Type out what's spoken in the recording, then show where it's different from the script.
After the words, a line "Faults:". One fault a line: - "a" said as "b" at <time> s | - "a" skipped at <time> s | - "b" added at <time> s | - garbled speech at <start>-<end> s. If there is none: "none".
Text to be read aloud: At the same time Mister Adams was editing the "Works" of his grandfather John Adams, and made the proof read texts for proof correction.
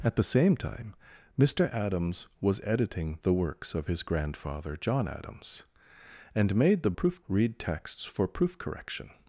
At the same time Mister Adams was editing the "Works" of his grandfather John Adams, and made the proof read texts for proof correction.
Faults:
none